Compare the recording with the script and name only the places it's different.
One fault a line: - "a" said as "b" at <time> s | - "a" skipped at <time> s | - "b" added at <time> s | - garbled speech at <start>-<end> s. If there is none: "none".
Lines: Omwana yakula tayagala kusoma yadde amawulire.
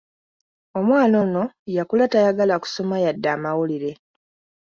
- "ono" added at 1.2 s